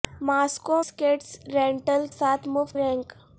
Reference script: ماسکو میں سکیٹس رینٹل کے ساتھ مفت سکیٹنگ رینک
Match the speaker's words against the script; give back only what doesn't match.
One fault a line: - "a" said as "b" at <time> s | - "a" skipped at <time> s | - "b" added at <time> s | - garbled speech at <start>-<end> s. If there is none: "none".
- "میں" skipped at 0.8 s
- "کے" skipped at 2.0 s
- "سکیٹنگ" skipped at 2.8 s